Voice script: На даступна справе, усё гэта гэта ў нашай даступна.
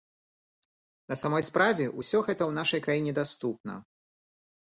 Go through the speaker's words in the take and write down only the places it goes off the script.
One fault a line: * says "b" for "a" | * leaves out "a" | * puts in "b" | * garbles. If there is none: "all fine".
* says "самой" for "даступна"
* leaves out "гэта"
* puts in "краіне"